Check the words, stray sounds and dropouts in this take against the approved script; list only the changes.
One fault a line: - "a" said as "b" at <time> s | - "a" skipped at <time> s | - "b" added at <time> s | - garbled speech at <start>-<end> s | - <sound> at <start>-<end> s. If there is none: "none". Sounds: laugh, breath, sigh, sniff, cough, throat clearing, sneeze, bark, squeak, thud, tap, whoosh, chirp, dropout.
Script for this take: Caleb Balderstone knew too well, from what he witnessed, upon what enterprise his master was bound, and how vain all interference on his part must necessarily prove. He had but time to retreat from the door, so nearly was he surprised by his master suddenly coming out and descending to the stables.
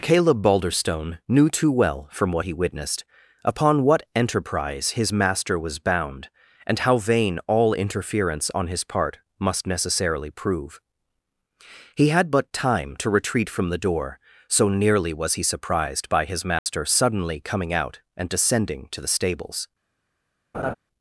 - dropout at 16.6-16.7 s
- laugh at 20.5-20.7 s